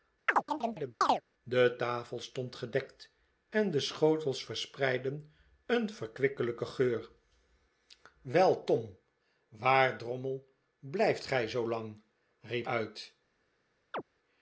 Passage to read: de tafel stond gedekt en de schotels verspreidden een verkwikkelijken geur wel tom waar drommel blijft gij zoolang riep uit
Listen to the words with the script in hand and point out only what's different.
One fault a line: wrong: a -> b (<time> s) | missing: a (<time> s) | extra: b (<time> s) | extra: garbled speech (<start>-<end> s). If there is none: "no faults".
no faults